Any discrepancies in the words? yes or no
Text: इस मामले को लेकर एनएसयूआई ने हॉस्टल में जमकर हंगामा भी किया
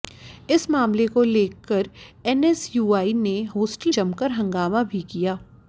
yes